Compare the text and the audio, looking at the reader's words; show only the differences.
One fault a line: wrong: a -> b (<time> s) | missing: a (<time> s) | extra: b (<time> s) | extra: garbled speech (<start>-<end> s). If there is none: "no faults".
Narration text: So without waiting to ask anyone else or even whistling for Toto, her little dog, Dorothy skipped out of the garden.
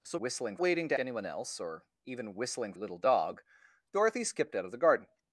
wrong: without -> whistling (0.2 s)
missing: ask (1.0 s)
missing: for Toto her (2.7 s)